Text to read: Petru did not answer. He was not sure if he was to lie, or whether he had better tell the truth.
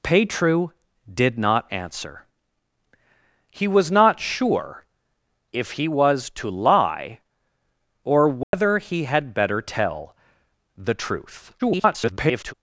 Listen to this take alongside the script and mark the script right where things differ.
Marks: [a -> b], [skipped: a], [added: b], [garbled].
Petru did not answer. He was not sure if he was to lie, or whether he had better tell the truth. [garbled]